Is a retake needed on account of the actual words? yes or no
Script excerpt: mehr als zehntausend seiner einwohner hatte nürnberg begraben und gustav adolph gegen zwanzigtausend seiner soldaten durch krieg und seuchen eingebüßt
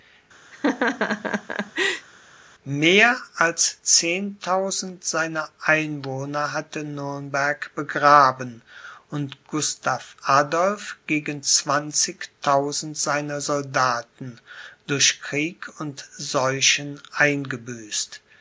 no